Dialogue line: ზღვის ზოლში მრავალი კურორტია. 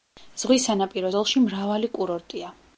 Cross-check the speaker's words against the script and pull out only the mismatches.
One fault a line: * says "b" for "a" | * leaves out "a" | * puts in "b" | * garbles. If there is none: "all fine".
* puts in "სანაპირო"